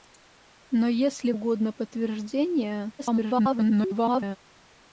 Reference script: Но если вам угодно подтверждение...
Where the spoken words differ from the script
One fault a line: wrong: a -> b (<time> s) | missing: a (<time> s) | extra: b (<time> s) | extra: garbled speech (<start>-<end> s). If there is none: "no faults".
missing: вам (1.3 s)
extra: garbled speech (3.0-4.4 s)